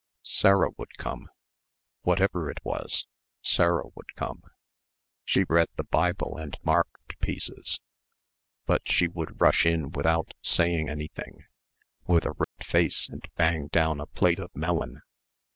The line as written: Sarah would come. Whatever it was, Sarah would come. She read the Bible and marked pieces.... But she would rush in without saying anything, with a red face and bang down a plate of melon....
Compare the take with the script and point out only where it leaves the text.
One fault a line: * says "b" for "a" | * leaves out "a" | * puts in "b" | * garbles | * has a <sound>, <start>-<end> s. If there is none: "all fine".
* has a dropout, 12.4-12.6 s